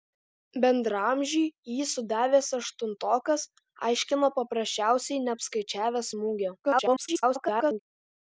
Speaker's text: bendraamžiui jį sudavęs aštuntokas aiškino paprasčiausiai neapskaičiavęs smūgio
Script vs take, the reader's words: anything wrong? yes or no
yes